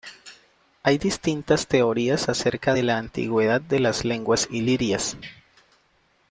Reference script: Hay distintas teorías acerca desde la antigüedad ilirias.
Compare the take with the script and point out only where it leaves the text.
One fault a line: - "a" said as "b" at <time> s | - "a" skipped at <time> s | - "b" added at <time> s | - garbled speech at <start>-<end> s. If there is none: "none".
- "desde" said as "de" at 2.7 s
- "de las lenguas" added at 3.6 s